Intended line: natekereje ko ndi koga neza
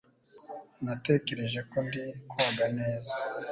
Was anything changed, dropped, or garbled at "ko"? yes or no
no